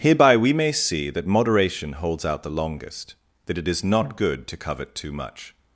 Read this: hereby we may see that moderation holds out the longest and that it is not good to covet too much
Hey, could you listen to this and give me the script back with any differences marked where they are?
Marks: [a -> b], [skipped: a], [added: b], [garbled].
hereby we may see that moderation holds out the longest [skipped: and] that it is not good to covet too much